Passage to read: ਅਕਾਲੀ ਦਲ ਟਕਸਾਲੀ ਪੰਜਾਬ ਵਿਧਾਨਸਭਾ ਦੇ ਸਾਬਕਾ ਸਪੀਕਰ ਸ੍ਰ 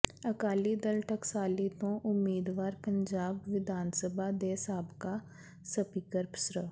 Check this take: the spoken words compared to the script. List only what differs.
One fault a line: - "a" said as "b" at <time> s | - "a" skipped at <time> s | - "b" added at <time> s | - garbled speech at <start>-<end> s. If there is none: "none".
- "ਤੋਂ ਉਮੀਦਵਾਰ" added at 1.8 s